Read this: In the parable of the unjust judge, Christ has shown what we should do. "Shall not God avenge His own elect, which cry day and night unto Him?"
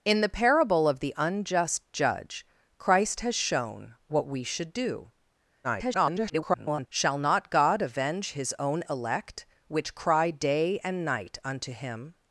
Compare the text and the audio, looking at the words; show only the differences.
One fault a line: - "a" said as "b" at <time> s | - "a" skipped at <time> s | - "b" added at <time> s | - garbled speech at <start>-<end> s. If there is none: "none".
- garbled speech at 5.6-6.9 s